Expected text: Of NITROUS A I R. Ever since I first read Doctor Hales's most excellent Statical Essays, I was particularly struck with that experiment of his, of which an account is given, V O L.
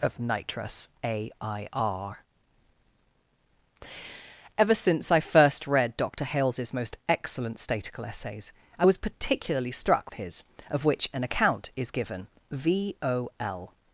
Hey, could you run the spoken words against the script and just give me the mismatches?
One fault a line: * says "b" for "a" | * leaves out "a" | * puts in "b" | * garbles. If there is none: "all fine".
* leaves out "with that experiment"